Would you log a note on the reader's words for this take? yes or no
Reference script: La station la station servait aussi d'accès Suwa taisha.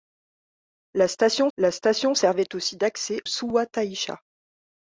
no